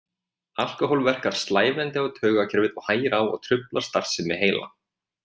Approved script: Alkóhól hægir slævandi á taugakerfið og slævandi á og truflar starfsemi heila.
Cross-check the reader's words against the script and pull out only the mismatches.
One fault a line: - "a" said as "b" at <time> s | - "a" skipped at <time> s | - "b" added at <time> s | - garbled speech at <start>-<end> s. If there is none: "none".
- "hægir" said as "verkar" at 1.1 s
- "slævandi" said as "hægir" at 2.9 s